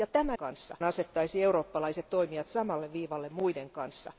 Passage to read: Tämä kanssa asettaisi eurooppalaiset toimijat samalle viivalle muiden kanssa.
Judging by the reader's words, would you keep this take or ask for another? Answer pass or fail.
pass